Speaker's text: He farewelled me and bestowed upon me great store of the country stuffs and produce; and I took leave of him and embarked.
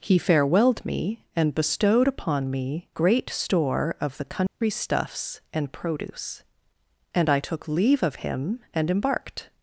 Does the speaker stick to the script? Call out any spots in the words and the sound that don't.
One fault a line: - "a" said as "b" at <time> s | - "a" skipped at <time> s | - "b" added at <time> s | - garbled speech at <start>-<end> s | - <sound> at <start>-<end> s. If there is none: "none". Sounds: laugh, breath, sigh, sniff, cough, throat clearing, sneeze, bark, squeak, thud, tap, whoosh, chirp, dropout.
- dropout at 4.5-4.6 s